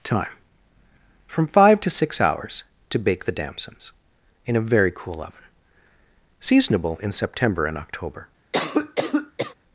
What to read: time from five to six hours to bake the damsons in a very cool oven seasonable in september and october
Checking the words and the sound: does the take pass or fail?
fail